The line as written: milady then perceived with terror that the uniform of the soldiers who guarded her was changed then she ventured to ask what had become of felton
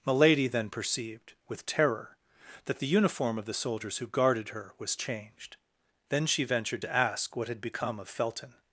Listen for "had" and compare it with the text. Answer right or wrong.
right